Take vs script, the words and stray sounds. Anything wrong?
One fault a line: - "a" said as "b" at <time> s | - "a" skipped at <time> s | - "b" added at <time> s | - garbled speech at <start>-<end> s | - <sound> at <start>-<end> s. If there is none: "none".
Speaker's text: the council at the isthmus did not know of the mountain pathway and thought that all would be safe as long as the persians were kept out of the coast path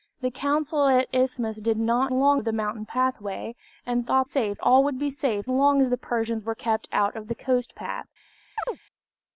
- "know" said as "long" at 2.1 s
- "that" said as "safe" at 4.2 s
- "as" skipped at 5.4 s
- chirp at 8.6-8.8 s